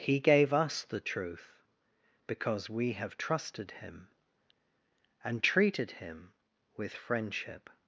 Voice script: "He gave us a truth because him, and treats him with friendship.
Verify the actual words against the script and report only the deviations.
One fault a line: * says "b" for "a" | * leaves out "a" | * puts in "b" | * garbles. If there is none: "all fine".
* says "the" for "a"
* puts in "we have trusted"
* says "treated" for "treats"